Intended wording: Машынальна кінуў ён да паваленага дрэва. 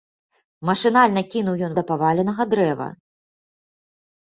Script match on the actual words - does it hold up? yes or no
yes